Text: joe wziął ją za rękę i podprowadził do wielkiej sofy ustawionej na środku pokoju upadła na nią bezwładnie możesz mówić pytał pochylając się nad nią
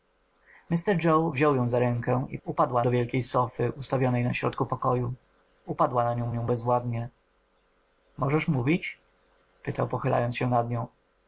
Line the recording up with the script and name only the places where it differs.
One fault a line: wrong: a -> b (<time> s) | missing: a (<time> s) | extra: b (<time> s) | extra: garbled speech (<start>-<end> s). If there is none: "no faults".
wrong: podprowadził -> upadła (2.4 s)
extra: nią (6.3 s)